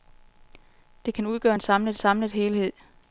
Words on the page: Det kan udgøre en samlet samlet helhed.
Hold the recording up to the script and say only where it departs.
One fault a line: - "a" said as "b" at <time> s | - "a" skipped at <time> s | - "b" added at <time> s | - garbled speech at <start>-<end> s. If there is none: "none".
none